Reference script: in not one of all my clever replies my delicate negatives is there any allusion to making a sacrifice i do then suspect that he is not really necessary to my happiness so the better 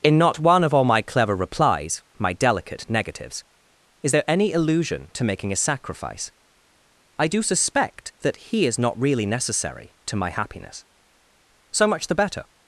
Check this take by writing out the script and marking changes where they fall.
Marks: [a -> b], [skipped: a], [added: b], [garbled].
in not one of all my clever replies my delicate negatives is there any allusion to making a sacrifice i do [skipped: then] suspect that he is not really necessary to my happiness so [added: much] the better